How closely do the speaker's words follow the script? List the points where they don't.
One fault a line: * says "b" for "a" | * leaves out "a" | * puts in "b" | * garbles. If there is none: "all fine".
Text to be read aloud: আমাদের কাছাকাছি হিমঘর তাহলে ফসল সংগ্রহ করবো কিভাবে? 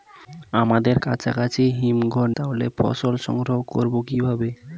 all fine